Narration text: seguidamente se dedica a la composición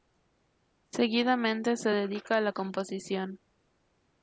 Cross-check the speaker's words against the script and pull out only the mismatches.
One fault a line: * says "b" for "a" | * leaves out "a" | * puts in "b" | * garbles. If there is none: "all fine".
all fine